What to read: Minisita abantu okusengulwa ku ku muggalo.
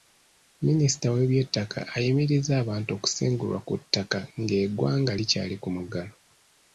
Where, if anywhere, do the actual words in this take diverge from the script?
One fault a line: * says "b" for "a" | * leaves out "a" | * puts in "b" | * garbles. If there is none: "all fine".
* puts in "w'ebyettaka ayimirizza"
* puts in "ttaka ng'eggwanga likyali"